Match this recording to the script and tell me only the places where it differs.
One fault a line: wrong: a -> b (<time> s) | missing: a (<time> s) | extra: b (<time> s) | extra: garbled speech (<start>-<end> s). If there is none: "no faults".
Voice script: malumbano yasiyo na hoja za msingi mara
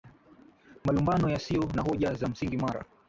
no faults